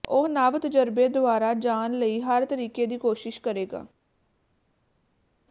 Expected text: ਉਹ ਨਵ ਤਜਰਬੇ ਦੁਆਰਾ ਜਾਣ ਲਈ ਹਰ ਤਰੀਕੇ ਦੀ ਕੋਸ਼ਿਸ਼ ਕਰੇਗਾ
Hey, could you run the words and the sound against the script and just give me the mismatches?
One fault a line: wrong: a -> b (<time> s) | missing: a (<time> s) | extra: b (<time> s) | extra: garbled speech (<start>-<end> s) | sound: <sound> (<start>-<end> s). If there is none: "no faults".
no faults